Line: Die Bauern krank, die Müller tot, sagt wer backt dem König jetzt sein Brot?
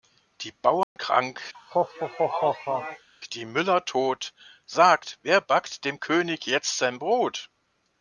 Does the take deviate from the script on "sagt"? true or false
false